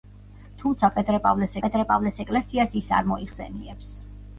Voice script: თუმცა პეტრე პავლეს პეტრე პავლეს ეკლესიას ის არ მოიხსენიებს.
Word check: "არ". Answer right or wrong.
right